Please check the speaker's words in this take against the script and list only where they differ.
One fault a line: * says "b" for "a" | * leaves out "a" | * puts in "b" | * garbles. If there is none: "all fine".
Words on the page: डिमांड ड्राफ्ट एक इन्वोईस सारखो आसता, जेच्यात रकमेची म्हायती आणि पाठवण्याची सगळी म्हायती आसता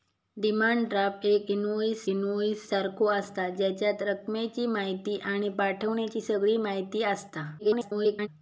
* puts in "इन्वोईस"
* garbles